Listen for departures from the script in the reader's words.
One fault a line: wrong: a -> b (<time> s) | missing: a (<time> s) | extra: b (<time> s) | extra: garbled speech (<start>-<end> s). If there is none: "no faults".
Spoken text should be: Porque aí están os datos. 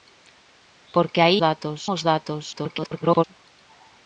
wrong: están -> datos (1.5 s)
extra: garbled speech (2.5-3.2 s)